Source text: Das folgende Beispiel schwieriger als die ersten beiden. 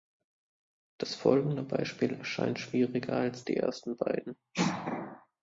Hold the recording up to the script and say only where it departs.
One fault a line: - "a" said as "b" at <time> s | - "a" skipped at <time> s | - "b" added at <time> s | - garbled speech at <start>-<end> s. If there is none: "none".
- "erscheint" added at 2.1 s